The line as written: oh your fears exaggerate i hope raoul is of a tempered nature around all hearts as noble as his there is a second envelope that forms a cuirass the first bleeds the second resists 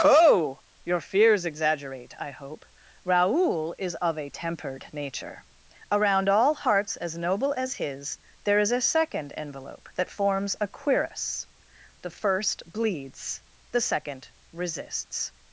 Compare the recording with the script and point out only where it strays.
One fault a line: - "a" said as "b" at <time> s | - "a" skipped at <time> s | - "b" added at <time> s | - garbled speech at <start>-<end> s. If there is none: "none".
none